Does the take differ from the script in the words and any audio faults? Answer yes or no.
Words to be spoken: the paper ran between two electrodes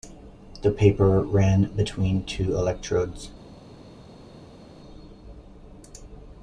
no